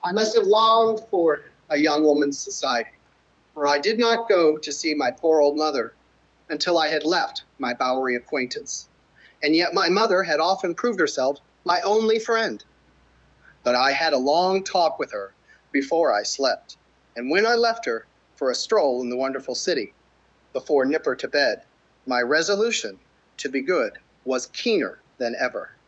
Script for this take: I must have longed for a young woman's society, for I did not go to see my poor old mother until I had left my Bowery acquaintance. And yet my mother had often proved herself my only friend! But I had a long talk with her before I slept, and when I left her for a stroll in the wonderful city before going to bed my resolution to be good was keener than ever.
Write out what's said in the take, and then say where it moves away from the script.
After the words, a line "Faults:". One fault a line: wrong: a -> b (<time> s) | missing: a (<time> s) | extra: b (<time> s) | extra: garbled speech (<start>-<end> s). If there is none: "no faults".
I must have longed for a young woman's society, for I did not go to see my poor old mother until I had left my Bowery acquaintance. And yet my mother had often proved herself my only friend! But I had a long talk with her before I slept, and when I left her for a stroll in the wonderful city before nipper to bed my resolution to be good was keener than ever.
Faults:
wrong: going -> nipper (20.8 s)